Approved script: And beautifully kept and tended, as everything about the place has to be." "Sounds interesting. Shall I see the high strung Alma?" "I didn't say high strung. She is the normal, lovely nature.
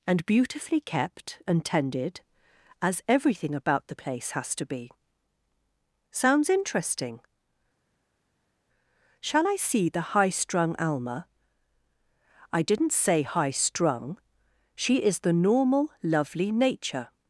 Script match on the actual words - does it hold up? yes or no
yes